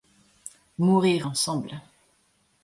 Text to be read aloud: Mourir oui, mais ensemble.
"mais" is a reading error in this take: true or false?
true